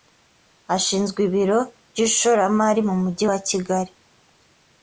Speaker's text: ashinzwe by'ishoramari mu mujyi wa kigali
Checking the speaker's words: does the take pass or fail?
fail